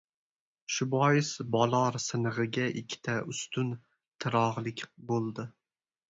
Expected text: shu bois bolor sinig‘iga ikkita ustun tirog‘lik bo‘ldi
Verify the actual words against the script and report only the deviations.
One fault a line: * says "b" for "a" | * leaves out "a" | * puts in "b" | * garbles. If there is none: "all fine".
all fine